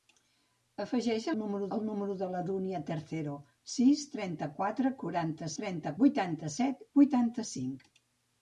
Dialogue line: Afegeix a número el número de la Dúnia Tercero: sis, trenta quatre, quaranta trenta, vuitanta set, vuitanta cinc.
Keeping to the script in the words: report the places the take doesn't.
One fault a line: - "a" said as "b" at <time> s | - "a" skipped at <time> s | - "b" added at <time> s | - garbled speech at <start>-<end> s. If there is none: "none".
none